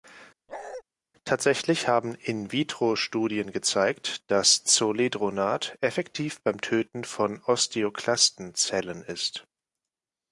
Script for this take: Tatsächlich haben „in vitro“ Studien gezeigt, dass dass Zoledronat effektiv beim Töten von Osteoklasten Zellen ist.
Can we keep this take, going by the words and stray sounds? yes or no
no